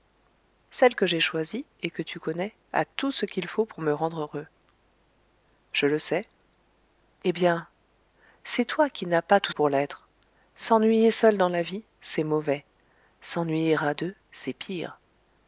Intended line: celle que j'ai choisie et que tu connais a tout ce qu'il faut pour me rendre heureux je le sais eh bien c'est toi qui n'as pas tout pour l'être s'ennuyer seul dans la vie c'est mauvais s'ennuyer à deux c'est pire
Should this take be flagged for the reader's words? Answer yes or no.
no